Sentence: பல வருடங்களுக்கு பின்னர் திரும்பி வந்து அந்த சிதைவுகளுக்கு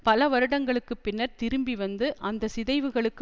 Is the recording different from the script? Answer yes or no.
no